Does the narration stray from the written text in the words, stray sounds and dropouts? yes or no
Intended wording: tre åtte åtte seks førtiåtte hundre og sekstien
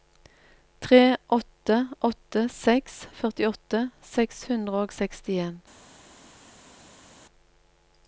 yes